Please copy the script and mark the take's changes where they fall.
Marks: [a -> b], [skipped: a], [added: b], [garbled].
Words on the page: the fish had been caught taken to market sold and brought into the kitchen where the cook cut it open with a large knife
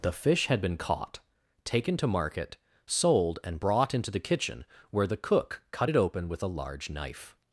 the fish had been caught taken to market sold and brought into the kitchen where the cook cut it open with a large knife